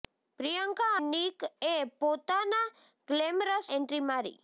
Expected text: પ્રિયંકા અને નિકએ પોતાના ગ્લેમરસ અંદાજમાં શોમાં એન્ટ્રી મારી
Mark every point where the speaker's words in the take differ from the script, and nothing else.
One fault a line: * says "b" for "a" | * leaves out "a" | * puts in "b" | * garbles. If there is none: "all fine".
* leaves out "અને"
* leaves out "અંદાજમાં શોમાં"